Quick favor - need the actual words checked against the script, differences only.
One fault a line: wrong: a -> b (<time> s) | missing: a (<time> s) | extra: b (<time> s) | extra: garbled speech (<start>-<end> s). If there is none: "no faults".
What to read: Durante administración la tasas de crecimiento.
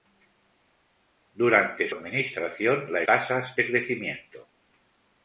no faults